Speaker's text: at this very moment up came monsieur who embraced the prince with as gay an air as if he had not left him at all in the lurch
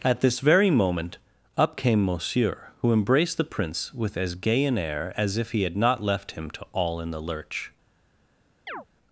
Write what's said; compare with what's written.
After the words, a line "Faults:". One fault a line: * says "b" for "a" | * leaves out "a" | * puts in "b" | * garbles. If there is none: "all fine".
at this very moment up came monsieur who embraced the prince with as gay an air as if he had not left him to all in the lurch
Faults:
* says "to" for "at"